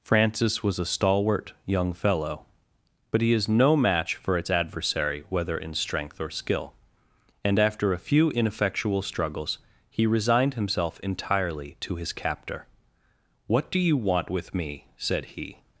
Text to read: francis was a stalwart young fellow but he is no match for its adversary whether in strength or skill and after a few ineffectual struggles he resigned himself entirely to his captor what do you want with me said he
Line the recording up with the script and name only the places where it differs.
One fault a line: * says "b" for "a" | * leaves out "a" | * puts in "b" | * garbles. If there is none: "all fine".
all fine